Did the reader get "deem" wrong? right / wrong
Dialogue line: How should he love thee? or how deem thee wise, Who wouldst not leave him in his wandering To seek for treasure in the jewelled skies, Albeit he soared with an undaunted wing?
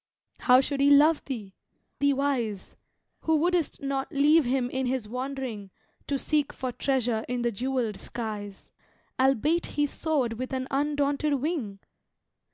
wrong